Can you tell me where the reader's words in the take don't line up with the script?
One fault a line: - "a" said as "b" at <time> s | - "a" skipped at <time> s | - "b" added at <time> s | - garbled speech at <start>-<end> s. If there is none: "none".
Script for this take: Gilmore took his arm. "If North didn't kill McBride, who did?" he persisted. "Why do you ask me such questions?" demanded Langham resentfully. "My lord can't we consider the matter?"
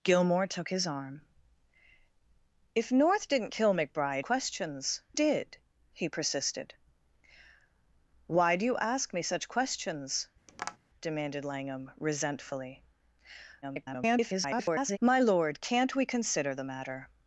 - "who" said as "questions" at 4.2 s
- garbled speech at 13.6-15.0 s